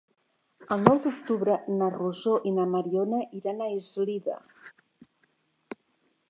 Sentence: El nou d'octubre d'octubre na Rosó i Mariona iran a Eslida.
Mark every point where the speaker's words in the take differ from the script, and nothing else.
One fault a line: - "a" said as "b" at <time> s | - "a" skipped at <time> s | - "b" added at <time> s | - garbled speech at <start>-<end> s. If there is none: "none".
- "d'octubre" skipped at 1.6 s
- "na" added at 2.6 s